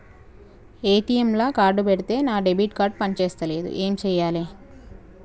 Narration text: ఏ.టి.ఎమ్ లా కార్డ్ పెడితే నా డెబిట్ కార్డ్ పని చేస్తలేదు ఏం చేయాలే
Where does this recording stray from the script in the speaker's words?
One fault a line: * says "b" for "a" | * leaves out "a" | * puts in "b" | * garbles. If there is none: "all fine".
all fine